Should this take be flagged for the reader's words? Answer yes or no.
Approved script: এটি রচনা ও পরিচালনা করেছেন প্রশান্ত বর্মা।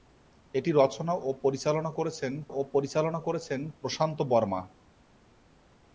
yes